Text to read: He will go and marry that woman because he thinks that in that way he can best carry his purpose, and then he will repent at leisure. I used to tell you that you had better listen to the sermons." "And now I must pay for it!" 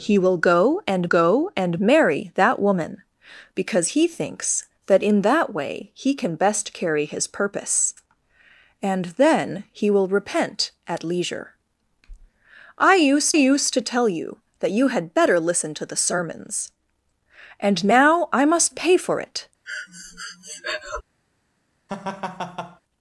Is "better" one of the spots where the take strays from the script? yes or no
no